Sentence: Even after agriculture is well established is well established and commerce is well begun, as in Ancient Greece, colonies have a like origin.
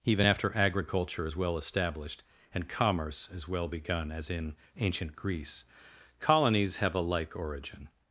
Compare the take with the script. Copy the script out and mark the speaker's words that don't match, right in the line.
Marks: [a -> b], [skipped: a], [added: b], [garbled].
Even after agriculture is well established [skipped: is well established] and commerce is well begun, as in Ancient Greece, colonies have a like origin.